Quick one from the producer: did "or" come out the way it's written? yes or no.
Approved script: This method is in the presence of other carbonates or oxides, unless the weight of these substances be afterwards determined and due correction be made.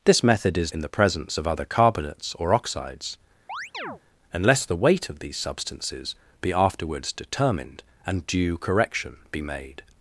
yes